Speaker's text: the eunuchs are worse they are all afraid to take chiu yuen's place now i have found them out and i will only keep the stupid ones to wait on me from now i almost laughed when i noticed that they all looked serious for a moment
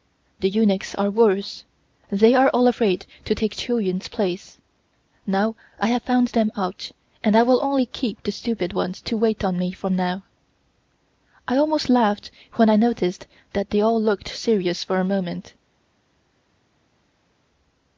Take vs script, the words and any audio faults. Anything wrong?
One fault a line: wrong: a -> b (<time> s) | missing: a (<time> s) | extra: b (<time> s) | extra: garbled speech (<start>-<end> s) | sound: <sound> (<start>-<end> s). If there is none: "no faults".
no faults